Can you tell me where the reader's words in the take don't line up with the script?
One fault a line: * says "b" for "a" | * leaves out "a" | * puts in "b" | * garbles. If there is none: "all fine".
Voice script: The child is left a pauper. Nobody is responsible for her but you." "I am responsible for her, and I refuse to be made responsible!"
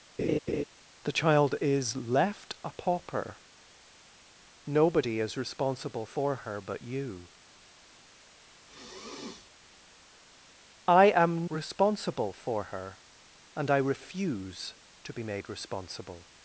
all fine